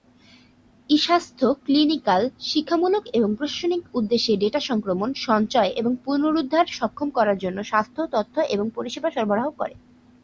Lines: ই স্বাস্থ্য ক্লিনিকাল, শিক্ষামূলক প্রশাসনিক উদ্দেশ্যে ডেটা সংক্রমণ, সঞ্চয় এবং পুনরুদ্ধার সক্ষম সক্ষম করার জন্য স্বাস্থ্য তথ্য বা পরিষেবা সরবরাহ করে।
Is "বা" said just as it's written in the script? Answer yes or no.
no